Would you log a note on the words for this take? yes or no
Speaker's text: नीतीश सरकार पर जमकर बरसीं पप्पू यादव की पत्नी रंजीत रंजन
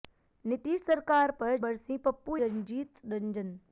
yes